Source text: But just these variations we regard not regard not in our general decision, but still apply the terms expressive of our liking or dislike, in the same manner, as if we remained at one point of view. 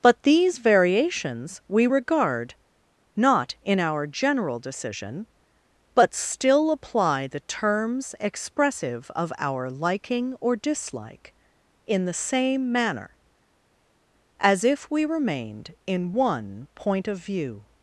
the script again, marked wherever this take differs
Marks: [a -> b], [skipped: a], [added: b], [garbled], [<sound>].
But [skipped: just] these variations we regard not [skipped: regard not] in our general decision, but still apply the terms expressive of our liking or dislike, in the same manner, as if we remained [at -> in] one point of view.